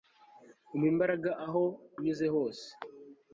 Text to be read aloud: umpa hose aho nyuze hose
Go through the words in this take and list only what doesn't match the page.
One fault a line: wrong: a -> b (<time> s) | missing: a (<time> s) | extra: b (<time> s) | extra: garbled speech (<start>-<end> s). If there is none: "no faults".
wrong: hose -> imbaraga (0.9 s)